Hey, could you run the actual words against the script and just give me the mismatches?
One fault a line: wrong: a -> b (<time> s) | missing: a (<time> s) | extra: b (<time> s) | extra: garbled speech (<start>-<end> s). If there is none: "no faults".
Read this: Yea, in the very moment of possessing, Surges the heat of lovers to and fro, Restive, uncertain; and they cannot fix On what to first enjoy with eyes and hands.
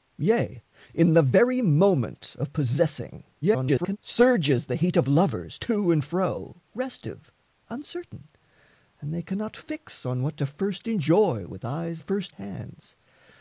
extra: garbled speech (3.4-4.0 s)
wrong: and -> first (11.9 s)